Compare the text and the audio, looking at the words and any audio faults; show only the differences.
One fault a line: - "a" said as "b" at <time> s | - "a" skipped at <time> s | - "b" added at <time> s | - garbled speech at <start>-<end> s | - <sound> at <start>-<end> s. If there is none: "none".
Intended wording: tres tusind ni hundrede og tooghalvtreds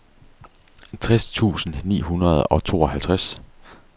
none